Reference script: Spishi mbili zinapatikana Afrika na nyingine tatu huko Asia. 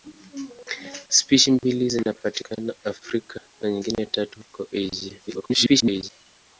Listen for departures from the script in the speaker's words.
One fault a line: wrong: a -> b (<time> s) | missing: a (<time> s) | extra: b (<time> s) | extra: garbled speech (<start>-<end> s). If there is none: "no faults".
extra: garbled speech (5.3-6.1 s)